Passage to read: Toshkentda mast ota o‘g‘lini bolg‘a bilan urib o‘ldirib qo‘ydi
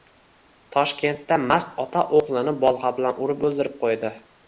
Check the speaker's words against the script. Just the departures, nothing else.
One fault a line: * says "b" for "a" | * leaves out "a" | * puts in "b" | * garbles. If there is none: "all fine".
all fine